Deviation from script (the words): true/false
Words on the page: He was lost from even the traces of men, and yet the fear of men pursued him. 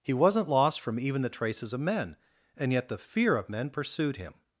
true